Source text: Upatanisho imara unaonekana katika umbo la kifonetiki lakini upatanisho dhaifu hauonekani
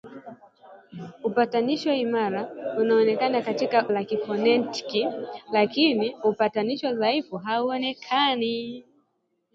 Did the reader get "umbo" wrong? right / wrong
wrong